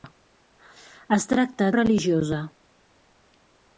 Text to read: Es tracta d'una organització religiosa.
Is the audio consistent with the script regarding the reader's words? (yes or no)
no